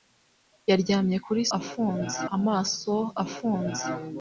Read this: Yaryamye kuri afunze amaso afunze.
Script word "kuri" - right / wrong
right